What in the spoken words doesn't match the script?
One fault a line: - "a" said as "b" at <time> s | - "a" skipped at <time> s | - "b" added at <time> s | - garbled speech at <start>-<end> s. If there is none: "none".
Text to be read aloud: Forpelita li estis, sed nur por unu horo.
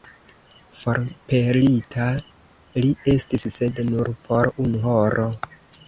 none